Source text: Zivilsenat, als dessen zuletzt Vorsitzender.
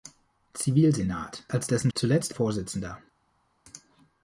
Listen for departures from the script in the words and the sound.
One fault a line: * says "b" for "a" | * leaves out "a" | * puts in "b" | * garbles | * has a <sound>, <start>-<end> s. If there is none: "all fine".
all fine